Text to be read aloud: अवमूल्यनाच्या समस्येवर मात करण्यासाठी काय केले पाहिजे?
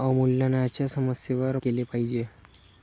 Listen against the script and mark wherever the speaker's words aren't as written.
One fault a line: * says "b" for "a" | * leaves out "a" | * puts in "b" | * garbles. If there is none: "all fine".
* leaves out "मात करण्यासाठी काय"